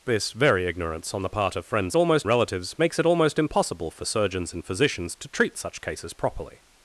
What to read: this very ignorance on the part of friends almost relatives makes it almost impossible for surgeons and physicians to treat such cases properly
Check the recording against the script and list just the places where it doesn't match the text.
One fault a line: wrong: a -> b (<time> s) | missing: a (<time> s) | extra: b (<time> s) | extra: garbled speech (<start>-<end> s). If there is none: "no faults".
no faults